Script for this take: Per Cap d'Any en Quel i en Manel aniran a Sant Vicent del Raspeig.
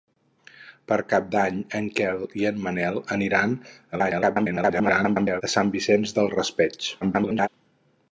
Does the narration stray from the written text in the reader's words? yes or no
yes